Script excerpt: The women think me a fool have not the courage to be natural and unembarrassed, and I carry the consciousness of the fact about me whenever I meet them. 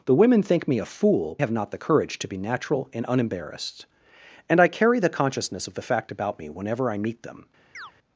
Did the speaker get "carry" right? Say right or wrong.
right